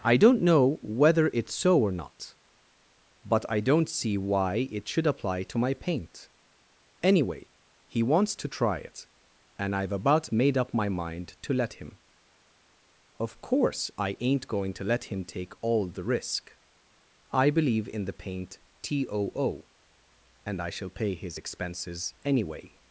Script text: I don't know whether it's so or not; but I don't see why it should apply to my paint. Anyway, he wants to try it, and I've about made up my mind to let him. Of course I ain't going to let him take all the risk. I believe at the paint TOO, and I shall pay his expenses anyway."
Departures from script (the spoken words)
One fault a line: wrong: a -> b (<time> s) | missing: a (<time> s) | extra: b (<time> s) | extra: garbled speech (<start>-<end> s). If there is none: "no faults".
wrong: at -> in (17.9 s)